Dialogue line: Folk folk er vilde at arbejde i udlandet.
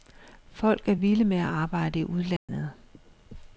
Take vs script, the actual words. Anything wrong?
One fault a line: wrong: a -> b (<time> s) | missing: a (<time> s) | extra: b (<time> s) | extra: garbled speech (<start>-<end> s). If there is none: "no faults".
missing: folk (0.9 s)
extra: med (1.2 s)